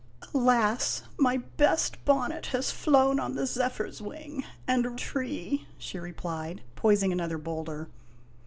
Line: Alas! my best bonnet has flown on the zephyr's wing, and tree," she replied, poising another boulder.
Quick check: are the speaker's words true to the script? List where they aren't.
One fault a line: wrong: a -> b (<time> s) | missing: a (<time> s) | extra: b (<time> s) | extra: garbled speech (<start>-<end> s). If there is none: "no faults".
no faults